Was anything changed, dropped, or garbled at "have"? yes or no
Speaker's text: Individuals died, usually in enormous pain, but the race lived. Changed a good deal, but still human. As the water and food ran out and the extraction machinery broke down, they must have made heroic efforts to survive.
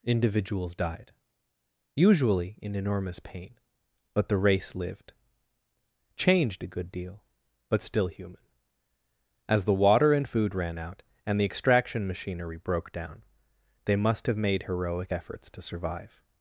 no